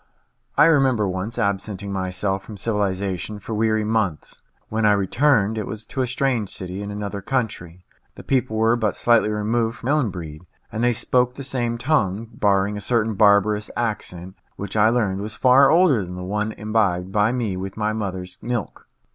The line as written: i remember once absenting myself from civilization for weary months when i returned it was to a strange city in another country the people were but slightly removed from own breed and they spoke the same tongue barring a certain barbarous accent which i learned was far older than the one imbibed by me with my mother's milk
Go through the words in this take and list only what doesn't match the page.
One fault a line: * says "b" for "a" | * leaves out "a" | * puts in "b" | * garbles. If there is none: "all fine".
all fine